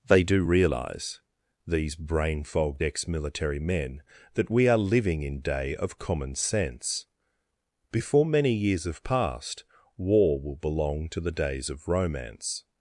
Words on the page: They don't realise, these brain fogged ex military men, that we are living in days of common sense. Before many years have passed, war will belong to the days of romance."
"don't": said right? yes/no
no